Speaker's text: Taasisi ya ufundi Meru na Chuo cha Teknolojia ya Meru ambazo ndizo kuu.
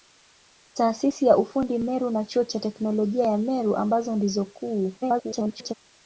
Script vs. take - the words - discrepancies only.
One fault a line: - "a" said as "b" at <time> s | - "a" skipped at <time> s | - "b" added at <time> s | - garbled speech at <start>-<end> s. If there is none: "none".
- garbled speech at 5.0-5.7 s